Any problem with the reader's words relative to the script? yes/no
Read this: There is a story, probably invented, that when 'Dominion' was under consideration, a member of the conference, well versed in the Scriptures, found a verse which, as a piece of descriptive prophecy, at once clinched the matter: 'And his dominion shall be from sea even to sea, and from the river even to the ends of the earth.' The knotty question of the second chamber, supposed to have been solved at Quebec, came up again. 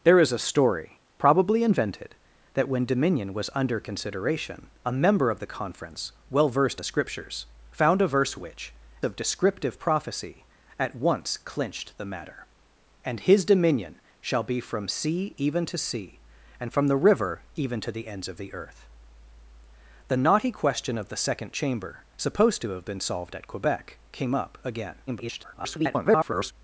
yes